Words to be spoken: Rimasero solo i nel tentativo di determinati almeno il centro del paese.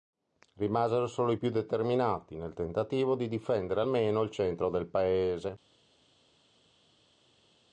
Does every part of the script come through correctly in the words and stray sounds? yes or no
no